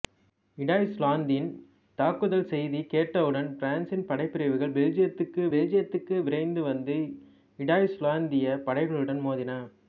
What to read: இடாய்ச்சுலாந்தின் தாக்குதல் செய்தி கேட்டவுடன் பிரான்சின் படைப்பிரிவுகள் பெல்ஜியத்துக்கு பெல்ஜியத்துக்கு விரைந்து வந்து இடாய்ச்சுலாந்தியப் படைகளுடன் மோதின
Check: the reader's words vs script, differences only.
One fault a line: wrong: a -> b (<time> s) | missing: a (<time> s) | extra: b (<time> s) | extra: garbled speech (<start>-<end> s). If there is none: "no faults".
no faults